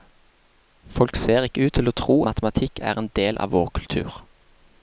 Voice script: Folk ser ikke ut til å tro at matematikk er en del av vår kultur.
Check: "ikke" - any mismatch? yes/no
no